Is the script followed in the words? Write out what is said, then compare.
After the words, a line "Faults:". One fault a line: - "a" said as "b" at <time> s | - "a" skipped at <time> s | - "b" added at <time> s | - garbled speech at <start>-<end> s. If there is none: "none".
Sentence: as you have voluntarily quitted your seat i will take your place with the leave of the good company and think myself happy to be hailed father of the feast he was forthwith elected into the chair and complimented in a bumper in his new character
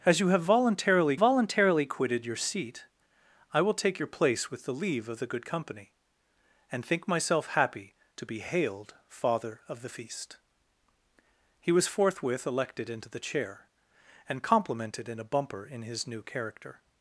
as you have voluntarily voluntarily quitted your seat i will take your place with the leave of the good company and think myself happy to be hailed father of the feast he was forthwith elected into the chair and complimented in a bumper in his new character
Faults:
- "voluntarily" added at 1.1 s